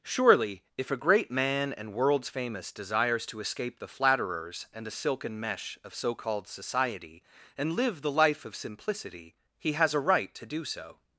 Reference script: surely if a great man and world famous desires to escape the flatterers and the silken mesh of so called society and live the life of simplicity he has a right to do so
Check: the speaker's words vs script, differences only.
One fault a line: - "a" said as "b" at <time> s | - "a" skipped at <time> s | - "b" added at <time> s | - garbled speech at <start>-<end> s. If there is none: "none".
- "world" said as "worlds" at 1.9 s